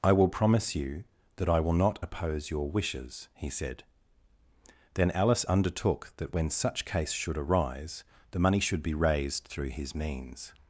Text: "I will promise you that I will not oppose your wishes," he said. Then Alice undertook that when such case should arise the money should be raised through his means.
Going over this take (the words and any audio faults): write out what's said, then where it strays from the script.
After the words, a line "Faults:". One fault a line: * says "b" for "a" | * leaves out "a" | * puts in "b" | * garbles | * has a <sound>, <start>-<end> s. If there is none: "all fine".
"I will promise you that I will not oppose your wishes," he said. Then Alice undertook that when such case should arise the money should be raised through his means.
Faults:
all fine